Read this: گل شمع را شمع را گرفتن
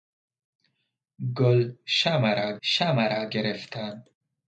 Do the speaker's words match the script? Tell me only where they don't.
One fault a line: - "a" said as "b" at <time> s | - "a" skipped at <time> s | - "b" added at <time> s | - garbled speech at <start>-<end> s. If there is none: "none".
none